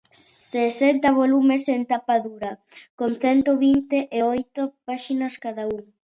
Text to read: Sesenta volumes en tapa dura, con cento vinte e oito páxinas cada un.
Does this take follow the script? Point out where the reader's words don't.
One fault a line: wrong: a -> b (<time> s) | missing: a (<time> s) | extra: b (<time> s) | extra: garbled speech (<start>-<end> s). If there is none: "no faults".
no faults